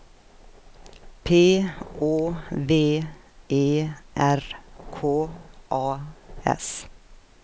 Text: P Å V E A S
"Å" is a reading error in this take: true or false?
false